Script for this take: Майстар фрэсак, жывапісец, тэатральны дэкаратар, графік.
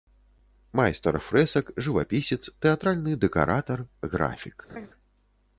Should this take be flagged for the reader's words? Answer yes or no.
no